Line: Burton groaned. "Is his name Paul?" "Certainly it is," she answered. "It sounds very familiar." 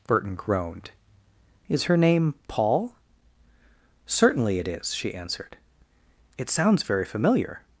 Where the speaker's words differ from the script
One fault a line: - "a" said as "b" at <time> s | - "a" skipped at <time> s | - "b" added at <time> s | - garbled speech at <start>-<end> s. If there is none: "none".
- "his" said as "her" at 1.8 s